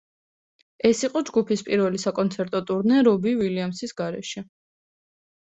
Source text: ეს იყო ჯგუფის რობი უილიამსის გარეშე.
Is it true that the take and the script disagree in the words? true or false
true